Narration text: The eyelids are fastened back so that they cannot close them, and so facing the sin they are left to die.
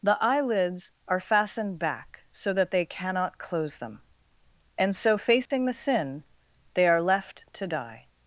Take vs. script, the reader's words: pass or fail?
pass